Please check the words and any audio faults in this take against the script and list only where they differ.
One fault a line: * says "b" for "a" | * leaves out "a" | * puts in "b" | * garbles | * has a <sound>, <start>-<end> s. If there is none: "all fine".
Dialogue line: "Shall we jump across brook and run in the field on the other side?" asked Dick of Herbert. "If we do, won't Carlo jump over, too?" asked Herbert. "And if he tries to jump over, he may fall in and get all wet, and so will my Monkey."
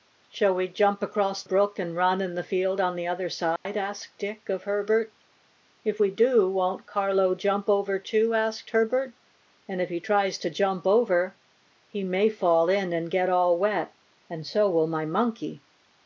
* has a dropout, 3.6-3.7 s